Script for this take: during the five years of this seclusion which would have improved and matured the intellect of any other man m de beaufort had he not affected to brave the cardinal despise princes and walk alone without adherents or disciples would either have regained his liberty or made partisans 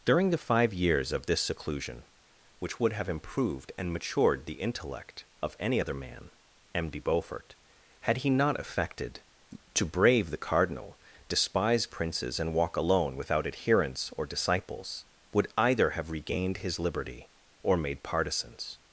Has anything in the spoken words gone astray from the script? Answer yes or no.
no